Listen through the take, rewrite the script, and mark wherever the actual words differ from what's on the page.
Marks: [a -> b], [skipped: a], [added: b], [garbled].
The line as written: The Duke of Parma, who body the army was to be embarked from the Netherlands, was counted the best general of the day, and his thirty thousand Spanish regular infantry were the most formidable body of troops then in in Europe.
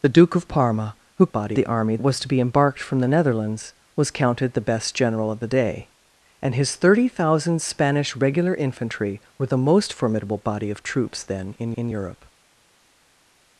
The Duke of Parma, who body the army was to be embarked from the Netherlands, was counted the best general of the day, and his thirty thousand Spanish regular infantry were the most formidable body of troops then in in Europe.